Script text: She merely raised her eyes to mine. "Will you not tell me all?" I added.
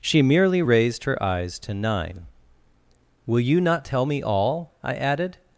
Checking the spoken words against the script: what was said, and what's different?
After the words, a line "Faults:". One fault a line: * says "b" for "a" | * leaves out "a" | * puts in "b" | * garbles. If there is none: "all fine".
She merely raised her eyes to nine. "Will you not tell me all?" I added.
Faults:
* says "nine" for "mine"